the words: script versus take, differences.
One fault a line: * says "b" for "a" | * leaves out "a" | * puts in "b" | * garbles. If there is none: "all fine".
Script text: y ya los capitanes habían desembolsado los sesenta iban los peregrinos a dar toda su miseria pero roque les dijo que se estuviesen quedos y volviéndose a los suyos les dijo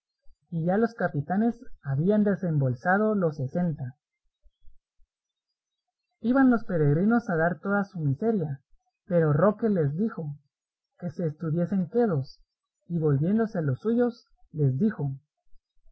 all fine